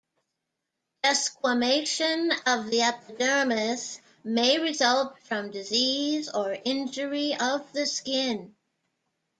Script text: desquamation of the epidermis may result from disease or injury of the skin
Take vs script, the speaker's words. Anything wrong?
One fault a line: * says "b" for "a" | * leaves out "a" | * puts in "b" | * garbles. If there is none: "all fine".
all fine